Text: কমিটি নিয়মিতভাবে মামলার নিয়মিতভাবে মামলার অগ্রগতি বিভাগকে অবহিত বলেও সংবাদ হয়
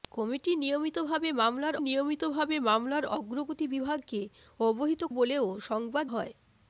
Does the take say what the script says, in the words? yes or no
yes